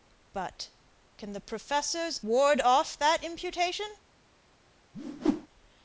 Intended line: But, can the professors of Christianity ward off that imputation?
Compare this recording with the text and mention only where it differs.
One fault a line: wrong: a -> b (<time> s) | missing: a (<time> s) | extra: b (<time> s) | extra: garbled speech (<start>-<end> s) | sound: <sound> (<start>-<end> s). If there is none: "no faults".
missing: of Christianity (2.2 s)
sound: whoosh (4.9-5.5 s)